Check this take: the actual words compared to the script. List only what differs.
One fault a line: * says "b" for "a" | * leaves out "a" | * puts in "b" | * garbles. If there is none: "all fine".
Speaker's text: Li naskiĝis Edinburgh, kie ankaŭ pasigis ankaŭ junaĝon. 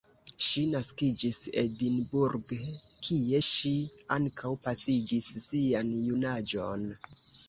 * says "Ŝi" for "Li"
* puts in "ŝi"
* says "sian" for "ankaŭ"